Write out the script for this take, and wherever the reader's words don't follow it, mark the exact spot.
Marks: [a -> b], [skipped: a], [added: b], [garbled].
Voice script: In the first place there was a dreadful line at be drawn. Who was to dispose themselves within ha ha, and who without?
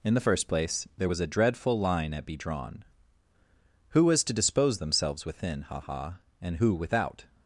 In the first place there was a dreadful line at be drawn. Who was to dispose themselves within ha ha, and who without?